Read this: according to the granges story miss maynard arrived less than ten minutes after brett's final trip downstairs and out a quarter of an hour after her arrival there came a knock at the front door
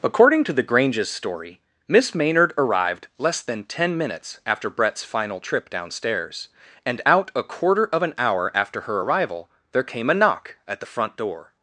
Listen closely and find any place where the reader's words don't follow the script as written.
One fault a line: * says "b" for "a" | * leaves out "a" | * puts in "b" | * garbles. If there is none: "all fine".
all fine